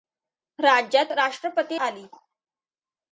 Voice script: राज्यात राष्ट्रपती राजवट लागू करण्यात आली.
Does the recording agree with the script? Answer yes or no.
no